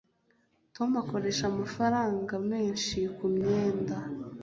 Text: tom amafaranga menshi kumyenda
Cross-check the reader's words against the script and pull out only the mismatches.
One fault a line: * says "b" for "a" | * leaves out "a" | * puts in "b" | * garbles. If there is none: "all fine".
* puts in "akoresha"